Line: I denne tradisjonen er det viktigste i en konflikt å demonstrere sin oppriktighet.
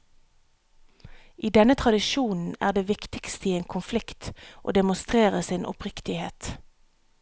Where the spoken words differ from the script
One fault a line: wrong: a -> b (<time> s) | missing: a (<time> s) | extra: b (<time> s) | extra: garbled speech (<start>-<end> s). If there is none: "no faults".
no faults